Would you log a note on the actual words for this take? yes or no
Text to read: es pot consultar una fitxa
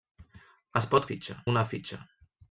yes